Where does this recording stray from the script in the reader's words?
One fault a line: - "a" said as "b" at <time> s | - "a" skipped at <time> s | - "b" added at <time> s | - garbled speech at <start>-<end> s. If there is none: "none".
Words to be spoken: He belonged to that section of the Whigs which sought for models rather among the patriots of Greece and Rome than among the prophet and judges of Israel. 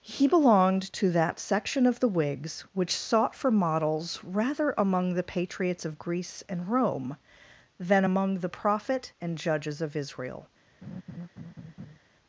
none